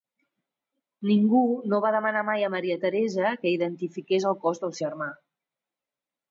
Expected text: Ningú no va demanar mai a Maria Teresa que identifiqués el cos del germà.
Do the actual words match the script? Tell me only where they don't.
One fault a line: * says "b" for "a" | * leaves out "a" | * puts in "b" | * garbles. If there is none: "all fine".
all fine